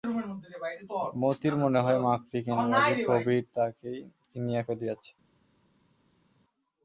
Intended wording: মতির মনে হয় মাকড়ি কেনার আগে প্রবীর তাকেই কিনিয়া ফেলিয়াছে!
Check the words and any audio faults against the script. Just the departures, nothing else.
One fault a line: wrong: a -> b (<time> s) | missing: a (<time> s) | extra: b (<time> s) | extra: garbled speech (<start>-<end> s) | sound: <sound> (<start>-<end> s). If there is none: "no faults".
no faults